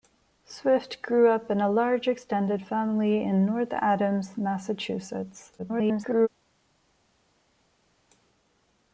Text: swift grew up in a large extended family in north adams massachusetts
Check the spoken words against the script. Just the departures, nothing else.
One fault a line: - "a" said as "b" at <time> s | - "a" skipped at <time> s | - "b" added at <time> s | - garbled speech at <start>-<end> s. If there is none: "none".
- garbled speech at 5.6-6.3 s